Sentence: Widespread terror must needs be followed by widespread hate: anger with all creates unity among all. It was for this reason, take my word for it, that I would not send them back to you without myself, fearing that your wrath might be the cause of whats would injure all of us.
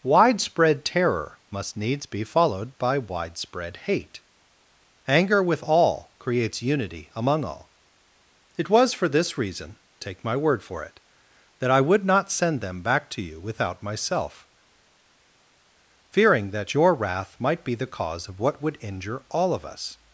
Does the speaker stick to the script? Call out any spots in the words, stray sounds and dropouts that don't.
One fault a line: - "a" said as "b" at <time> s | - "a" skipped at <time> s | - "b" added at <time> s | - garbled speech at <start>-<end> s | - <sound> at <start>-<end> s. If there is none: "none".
- "whats" said as "what" at 18.4 s